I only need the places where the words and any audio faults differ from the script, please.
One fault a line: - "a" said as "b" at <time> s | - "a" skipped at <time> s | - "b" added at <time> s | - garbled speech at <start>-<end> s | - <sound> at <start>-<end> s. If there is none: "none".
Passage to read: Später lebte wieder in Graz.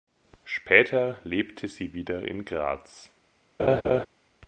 - "sie" added at 1.7 s
- laugh at 3.6-4.1 s